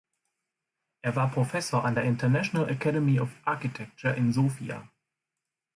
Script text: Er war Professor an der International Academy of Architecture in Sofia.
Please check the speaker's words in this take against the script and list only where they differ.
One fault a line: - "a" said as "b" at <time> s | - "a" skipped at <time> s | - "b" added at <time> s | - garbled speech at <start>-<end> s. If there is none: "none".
none